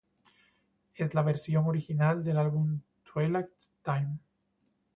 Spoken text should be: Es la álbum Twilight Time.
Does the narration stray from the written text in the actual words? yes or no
yes